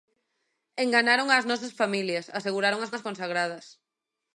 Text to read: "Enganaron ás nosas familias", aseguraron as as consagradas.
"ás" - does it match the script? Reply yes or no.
yes